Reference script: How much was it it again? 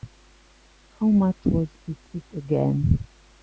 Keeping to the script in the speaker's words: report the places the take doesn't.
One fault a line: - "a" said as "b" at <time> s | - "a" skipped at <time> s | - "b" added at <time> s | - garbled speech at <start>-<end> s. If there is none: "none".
none